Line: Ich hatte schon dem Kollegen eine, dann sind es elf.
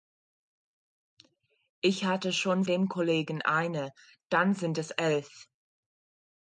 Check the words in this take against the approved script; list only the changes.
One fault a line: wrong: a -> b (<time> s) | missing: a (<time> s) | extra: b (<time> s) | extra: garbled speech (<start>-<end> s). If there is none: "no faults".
no faults